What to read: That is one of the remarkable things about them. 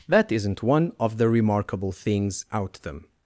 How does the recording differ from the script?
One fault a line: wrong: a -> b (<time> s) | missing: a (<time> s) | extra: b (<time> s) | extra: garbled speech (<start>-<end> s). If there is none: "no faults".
wrong: is -> isn't (0.3 s)
wrong: about -> out (2.5 s)